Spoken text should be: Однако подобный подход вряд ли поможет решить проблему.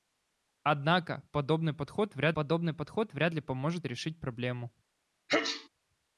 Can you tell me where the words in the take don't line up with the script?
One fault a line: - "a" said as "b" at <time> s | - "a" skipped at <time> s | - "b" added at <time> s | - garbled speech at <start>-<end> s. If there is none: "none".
- "подобный подход вряд" added at 2.3 s